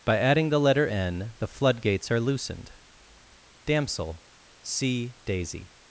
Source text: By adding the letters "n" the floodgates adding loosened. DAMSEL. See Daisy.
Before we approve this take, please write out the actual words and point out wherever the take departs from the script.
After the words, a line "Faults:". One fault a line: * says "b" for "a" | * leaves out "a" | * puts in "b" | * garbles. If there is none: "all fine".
By adding the letter "n" the floodgates are loosened. DAMSEL. See Daisy.
Faults:
* says "letter" for "letters"
* says "are" for "adding"